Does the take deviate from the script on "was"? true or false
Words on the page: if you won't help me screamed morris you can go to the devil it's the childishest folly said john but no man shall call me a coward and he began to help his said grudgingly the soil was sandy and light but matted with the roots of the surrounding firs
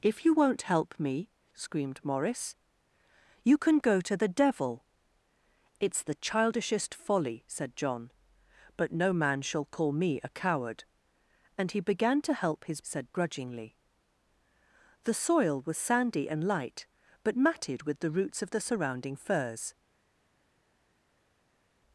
false